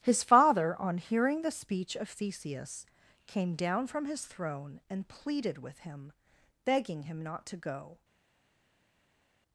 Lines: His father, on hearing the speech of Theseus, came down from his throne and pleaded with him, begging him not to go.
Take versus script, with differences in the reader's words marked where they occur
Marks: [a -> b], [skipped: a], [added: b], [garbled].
His father, on hearing the speech of Theseus, came down from his throne and pleaded with him, begging him not to go.